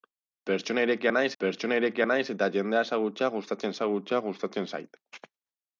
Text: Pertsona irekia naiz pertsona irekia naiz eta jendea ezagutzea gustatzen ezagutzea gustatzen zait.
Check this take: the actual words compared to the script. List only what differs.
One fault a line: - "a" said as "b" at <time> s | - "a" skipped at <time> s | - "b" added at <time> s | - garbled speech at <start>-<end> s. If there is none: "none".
none